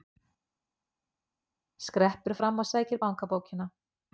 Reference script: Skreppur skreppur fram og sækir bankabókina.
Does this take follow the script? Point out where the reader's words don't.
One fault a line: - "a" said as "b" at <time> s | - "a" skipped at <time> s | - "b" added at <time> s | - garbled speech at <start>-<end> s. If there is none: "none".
- "skreppur" skipped at 2.4 s